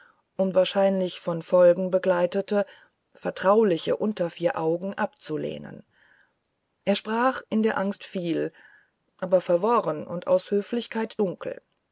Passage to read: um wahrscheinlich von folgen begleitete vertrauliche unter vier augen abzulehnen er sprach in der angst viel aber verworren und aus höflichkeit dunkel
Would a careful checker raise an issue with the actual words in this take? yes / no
no